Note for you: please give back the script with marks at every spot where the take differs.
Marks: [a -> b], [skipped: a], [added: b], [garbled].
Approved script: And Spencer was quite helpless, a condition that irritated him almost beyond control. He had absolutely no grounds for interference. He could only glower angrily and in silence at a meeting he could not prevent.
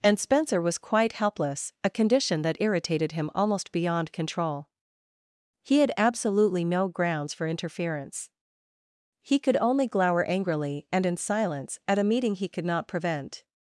And Spencer was quite helpless, a condition that irritated him almost beyond control. He had absolutely no grounds for interference. He could only glower angrily and in silence at a meeting he could not prevent.